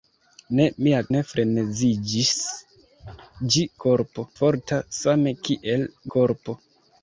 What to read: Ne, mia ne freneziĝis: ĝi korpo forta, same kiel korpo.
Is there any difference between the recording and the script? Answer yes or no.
no